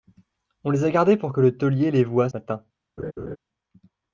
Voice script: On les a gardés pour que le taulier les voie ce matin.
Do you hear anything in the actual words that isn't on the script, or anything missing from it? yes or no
yes